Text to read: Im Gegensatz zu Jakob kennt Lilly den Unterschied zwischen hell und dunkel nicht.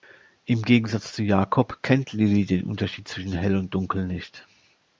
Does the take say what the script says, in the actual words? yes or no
yes